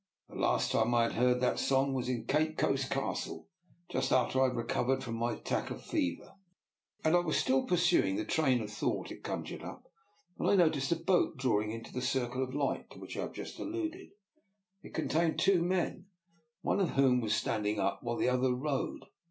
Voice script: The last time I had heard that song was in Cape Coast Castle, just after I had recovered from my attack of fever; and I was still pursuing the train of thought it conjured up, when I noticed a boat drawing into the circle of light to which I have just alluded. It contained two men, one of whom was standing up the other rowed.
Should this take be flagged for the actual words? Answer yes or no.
yes